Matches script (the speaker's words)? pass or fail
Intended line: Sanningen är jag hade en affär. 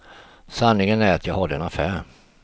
fail